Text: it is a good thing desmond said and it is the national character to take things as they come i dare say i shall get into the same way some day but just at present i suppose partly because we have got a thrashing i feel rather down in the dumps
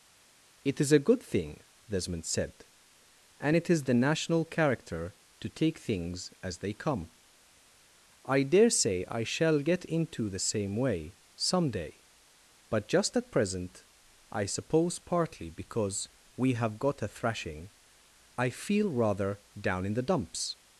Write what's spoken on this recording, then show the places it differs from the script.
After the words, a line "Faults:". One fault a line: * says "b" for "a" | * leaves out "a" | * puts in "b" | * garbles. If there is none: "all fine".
it is a good thing desmond said and it is the national character to take things as they come i dare say i shall get into the same way some day but just at present i suppose partly because we have got a thrashing i feel rather down in the dumps
Faults:
all fine